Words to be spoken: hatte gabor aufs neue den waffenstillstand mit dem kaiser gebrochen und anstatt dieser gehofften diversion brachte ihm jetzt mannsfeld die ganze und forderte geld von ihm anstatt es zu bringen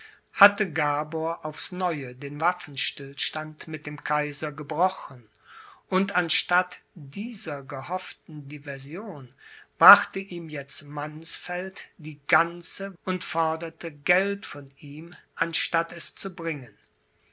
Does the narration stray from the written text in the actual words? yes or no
no